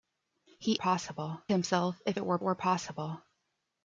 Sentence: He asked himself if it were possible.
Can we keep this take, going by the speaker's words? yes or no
no